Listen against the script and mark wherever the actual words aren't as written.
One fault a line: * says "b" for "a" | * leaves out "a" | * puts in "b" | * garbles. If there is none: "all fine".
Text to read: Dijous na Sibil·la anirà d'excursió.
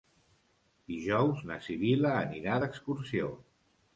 all fine